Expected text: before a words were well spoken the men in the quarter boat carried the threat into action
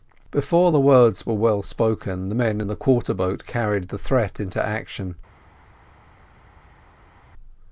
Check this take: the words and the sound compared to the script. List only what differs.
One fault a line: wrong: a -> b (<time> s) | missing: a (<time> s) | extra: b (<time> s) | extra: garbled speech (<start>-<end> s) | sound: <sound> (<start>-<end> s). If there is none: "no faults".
wrong: a -> the (0.7 s)